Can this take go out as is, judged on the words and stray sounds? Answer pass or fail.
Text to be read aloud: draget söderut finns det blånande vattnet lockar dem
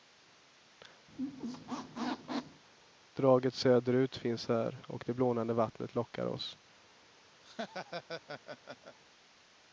fail